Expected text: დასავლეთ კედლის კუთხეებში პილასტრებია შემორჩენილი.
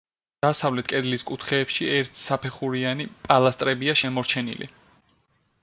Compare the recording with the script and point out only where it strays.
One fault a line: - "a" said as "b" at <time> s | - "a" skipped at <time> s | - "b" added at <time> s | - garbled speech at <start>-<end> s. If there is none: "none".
- "ერთსაფეხურიანი" added at 2.0 s